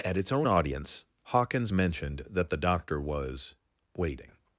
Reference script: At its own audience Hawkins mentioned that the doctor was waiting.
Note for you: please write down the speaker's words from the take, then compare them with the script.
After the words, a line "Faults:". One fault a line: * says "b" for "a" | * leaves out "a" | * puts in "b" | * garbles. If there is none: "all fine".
At its own audience Hawkins mentioned that the doctor was waiting.
Faults:
all fine